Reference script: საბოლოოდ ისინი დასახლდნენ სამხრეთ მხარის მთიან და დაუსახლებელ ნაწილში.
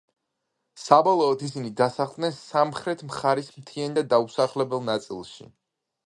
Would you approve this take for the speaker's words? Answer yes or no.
yes